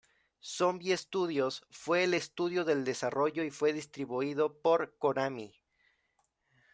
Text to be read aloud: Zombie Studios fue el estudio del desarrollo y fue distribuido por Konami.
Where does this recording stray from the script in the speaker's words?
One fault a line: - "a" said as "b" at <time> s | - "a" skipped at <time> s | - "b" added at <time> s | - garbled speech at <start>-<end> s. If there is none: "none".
none